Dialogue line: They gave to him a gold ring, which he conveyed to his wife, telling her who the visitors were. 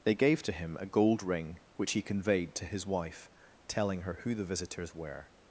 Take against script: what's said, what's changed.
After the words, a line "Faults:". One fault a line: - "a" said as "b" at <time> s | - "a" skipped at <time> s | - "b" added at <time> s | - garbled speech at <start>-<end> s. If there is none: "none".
They gave to him a gold ring, which he conveyed to his wife, telling her who the visitors were.
Faults:
none